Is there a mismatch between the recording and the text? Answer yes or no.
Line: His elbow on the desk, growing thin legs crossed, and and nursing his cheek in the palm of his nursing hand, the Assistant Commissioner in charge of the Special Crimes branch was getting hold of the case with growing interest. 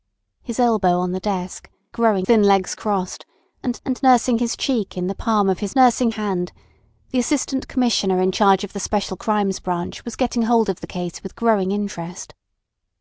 no